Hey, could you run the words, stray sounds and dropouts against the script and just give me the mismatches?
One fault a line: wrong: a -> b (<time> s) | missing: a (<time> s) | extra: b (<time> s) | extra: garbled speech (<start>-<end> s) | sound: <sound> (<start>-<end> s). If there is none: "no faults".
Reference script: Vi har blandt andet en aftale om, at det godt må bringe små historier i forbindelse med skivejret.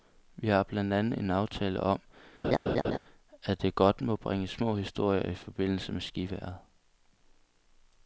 sound: laugh (2.4-3.0 s)